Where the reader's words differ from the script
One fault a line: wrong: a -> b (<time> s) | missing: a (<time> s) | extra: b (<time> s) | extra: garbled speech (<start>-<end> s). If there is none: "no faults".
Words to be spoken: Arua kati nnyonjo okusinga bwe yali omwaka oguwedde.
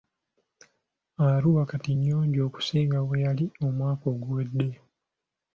no faults